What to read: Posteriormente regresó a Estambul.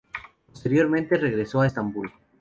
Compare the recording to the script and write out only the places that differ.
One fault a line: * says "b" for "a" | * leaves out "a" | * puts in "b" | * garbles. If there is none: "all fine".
all fine